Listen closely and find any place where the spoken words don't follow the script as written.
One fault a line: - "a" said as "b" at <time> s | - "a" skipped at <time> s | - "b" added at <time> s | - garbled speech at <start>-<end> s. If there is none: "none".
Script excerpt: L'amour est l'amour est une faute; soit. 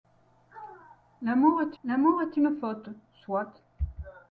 none